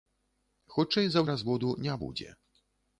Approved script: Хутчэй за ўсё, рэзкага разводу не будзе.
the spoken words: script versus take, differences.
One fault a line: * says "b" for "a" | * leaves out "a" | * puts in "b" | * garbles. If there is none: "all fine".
* leaves out "ўсё рэзкага"